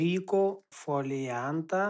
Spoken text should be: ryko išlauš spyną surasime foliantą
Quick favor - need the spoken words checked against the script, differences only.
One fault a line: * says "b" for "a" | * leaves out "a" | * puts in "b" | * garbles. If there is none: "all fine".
* leaves out "išlauš spyną surasime"